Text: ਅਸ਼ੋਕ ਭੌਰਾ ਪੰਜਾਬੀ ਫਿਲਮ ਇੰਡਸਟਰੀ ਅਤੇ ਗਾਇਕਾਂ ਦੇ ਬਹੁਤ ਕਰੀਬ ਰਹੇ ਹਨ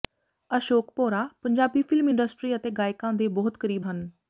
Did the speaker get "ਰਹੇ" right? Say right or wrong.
wrong